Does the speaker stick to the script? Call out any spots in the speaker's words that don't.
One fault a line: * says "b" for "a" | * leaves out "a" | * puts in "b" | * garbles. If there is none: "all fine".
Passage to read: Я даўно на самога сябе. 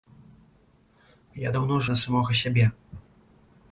all fine